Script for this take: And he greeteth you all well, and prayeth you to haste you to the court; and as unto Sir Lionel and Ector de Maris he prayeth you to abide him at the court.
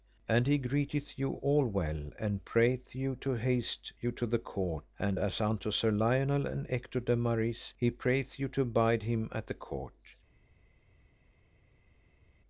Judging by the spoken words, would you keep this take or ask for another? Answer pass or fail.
pass